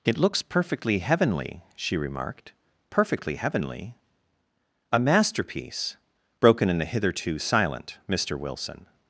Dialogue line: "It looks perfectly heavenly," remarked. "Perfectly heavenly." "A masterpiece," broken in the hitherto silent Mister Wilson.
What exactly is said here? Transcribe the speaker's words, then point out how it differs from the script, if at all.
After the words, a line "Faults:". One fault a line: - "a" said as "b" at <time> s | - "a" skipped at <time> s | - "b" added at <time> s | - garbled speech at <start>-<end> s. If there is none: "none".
"It looks perfectly heavenly," she remarked. "Perfectly heavenly." "A masterpiece," broken in the hitherto silent Mister Wilson.
Faults:
- "she" added at 1.8 s